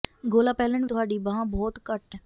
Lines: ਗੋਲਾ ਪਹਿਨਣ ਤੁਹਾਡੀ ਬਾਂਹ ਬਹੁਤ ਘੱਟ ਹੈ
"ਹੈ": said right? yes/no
yes